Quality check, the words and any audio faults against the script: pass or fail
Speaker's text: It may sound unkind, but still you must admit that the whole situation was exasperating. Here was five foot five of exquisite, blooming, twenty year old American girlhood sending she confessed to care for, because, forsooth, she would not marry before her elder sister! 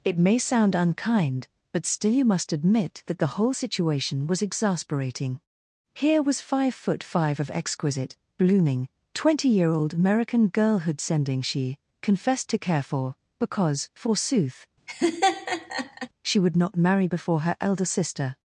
fail